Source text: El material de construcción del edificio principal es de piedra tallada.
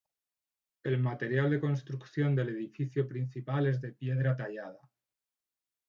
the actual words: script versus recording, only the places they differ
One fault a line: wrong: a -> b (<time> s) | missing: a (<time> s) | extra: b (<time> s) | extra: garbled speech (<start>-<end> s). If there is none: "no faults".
no faults